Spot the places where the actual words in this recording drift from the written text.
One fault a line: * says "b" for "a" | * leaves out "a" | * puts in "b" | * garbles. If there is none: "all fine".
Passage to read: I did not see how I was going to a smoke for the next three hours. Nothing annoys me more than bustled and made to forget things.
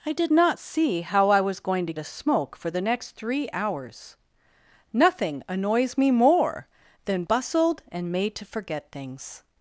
all fine